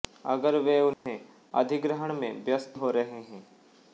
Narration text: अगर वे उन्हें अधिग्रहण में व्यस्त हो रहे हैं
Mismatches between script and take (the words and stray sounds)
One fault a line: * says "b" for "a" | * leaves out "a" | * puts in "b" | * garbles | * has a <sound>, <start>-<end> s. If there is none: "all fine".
* has a dropout, 0.9-1.1 s